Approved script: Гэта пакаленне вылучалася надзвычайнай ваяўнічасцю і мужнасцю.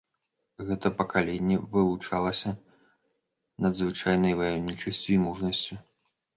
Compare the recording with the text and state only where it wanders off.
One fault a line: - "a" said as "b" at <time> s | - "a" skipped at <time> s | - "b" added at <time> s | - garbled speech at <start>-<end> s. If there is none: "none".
none